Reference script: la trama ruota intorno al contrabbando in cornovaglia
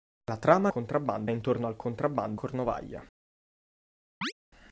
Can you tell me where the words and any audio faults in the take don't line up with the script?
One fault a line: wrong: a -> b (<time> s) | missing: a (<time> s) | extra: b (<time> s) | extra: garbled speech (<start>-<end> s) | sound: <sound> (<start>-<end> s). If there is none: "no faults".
wrong: ruota -> contrabbando (0.7 s)
missing: in (2.4 s)
sound: chirp (4.2-4.3 s)